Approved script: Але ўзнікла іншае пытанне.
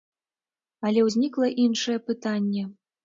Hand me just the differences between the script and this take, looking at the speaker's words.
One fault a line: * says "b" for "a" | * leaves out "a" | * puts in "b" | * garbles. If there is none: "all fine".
all fine